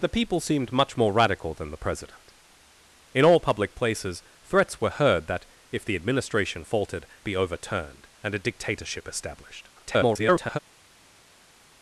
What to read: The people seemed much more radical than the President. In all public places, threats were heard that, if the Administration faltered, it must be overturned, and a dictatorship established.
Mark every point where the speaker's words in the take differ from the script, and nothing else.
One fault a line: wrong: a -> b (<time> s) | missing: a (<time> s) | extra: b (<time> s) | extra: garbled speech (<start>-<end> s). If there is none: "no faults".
missing: it must (7.0 s)
extra: garbled speech (9.8-10.6 s)